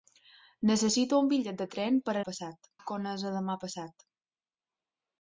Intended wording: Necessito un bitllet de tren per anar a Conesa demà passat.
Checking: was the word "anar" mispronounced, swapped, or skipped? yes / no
yes